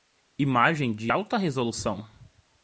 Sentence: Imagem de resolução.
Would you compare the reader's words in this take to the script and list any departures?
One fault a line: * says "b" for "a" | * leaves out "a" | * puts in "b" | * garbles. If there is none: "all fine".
* puts in "alta"